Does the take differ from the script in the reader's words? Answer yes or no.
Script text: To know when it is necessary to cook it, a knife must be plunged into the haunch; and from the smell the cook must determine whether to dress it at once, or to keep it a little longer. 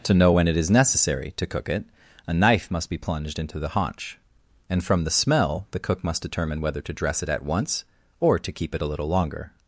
no